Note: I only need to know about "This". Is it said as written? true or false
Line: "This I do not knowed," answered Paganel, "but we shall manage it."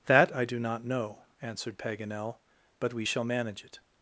false